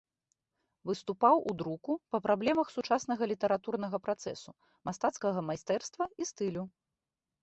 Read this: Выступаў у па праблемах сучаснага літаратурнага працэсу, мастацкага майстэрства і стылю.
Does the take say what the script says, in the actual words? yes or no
no